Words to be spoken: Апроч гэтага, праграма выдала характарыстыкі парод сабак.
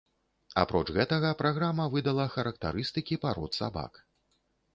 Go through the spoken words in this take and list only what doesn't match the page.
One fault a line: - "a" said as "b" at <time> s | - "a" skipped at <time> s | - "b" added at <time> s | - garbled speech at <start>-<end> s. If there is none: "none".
none